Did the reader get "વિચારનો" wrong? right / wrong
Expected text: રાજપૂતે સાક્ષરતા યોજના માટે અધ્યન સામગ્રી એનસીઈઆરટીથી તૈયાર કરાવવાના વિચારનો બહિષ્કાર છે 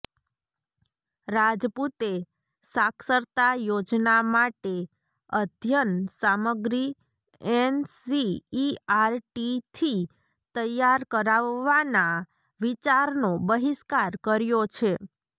right